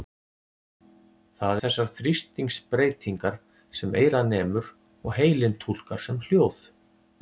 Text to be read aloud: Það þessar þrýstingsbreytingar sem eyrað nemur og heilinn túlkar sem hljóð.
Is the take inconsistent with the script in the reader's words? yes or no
no